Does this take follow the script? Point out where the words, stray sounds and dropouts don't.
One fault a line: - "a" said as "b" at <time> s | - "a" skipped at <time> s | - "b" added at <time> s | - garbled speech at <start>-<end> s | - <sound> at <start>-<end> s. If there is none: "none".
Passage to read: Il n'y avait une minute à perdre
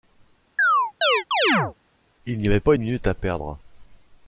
- chirp at 0.6-1.7 s
- "pas" added at 2.6 s